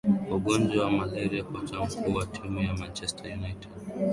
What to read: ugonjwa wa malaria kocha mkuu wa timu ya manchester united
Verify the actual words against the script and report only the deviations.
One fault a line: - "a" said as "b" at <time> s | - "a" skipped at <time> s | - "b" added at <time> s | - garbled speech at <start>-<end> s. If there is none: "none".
none